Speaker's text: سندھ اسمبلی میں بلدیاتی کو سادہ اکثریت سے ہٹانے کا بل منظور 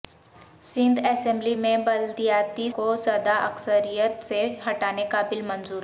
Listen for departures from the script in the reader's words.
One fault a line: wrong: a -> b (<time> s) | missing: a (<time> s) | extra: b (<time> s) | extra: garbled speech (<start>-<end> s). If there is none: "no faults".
no faults